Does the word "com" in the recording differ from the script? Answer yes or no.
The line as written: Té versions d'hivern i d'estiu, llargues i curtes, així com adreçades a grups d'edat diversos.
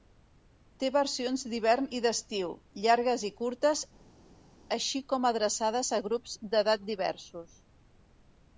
no